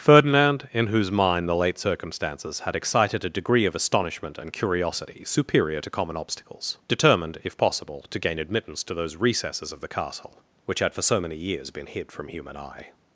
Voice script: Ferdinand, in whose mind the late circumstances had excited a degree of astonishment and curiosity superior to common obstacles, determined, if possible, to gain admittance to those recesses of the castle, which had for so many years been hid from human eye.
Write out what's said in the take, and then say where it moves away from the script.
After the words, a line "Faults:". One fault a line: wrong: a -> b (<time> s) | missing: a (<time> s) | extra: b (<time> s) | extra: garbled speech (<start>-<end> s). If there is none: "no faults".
Ferdinand, in whose mind the late circumstances had excited a degree of astonishment and curiosity superior to common obstacles, determined, if possible, to gain admittance to those recesses of the castle, which had for so many years been hid from human eye.
Faults:
no faults